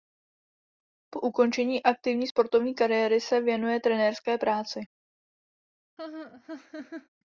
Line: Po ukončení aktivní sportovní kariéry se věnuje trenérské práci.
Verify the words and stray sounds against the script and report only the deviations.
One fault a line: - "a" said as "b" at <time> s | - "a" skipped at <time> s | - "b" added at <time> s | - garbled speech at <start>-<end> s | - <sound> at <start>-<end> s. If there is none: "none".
- laugh at 6.0-7.1 s